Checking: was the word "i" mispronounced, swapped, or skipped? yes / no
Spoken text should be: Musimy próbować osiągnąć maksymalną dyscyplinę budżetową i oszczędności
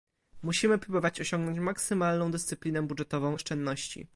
yes